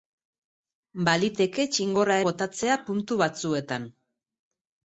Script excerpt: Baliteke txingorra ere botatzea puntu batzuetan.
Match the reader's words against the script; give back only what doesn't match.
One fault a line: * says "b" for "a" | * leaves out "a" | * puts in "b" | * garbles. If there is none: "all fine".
* leaves out "ere"